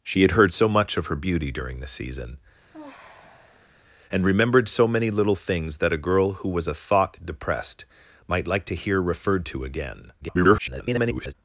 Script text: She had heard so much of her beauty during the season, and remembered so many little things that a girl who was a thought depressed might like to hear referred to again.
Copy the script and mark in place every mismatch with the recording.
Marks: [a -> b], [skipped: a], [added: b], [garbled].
She had heard so much of her beauty during the season, and remembered so many little things that a girl who was a thought depressed might like to hear referred to again. [garbled]